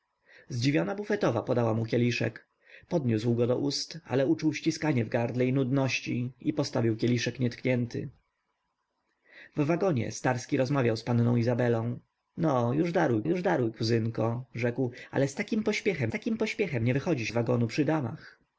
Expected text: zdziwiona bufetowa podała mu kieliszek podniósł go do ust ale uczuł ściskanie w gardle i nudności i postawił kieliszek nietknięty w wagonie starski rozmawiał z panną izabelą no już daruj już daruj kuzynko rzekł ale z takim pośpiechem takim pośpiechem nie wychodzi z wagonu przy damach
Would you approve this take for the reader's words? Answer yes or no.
yes